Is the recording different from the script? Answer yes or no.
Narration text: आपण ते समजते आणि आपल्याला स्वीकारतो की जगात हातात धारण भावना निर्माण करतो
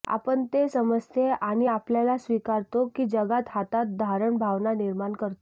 no